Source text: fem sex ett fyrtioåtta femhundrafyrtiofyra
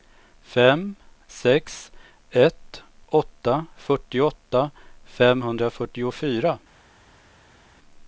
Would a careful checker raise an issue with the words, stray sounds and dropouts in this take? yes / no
yes